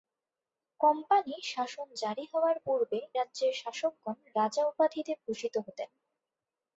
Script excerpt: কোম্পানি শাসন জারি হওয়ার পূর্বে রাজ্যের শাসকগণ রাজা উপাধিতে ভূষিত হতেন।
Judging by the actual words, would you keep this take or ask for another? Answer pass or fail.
pass